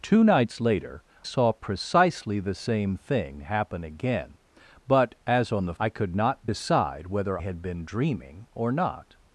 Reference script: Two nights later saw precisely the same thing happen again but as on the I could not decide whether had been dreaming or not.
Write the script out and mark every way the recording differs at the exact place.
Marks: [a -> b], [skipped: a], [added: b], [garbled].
Two nights later saw precisely the same thing happen again but as on the I could not decide whether had been dreaming or not.